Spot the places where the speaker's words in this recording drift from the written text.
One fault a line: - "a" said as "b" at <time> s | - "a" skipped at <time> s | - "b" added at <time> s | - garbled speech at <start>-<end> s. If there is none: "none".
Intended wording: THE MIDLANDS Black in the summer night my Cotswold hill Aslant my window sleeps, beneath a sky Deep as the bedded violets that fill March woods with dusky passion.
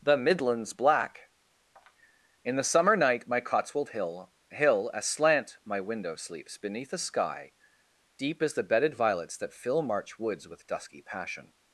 - "hill" added at 4.5 s